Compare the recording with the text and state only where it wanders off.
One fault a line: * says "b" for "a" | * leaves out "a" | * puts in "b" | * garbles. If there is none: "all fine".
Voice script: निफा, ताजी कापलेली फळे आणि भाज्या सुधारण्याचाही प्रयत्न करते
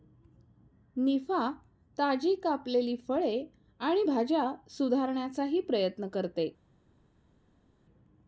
all fine